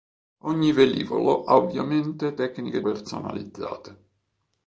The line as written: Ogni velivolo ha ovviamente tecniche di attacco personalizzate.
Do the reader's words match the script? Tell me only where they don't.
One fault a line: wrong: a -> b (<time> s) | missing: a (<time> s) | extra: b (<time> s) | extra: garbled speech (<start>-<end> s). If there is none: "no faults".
missing: di attacco (2.8 s)